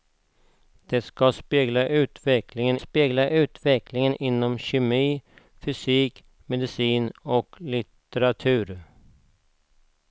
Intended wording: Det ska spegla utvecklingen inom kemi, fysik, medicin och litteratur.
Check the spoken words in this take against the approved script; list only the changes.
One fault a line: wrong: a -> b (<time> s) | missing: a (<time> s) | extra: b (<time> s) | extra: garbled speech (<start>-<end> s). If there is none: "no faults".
extra: spegla utvecklingen (2.8 s)